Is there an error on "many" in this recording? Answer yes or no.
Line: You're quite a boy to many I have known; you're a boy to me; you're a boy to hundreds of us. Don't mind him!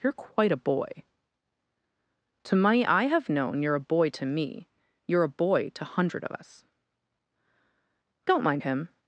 yes